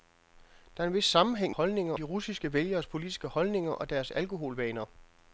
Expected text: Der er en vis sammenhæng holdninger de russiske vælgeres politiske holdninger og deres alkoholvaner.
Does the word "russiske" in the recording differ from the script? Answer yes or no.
no